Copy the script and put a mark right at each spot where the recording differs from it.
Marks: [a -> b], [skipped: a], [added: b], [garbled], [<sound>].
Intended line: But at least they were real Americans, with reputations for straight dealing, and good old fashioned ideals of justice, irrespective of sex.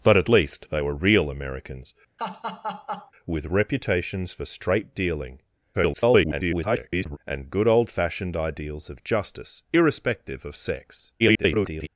But at least they were real Americans, [laugh] with reputations for straight dealing, [garbled] and good old fashioned ideals of justice, irrespective of sex. [garbled]